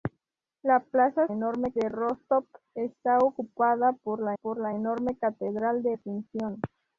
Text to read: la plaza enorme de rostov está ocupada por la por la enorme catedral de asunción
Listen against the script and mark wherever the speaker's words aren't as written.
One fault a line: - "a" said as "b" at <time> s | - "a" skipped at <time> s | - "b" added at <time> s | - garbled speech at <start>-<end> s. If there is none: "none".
none